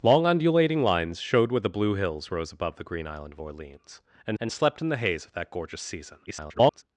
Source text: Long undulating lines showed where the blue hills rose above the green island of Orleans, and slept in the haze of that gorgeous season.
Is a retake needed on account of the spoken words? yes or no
yes